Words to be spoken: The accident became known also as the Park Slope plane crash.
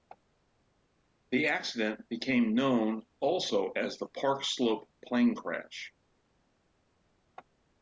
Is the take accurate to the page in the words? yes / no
yes